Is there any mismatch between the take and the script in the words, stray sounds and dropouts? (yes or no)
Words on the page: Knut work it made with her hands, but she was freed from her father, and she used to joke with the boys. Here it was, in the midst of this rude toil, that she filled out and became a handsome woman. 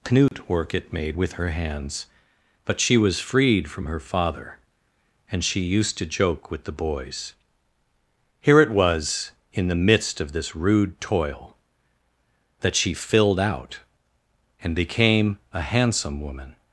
yes